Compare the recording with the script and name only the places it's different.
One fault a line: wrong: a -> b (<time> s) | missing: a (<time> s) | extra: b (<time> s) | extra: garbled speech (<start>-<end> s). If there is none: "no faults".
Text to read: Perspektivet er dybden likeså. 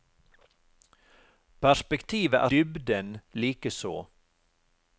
no faults